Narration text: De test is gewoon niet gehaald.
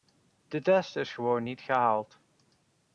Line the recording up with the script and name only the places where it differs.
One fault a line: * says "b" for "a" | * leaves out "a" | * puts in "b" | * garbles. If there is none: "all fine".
all fine